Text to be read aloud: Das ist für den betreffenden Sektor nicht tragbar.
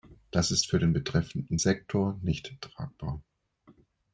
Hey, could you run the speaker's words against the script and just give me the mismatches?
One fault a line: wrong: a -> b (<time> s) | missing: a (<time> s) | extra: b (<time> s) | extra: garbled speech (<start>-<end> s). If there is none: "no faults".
no faults